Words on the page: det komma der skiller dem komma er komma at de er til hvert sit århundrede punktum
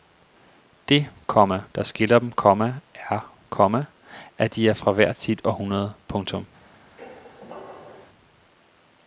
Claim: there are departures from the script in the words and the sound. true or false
true